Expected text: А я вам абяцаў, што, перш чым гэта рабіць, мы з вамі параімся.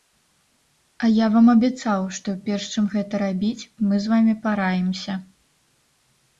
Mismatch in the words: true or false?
false